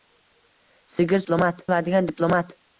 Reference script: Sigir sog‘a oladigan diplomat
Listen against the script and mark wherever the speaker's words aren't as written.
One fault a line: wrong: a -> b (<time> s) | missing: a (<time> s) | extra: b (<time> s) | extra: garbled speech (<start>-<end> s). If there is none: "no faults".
wrong: sog‘a -> diplomat (1.2 s)